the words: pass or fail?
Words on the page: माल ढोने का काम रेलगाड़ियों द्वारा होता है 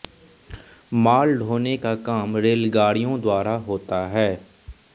pass